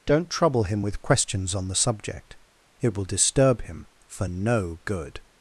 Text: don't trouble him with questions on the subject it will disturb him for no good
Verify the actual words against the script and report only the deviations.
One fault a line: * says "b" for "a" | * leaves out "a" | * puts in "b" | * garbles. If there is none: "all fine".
all fine